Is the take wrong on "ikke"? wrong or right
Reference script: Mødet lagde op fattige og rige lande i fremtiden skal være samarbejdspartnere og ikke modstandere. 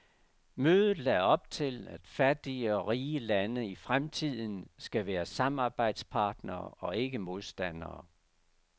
right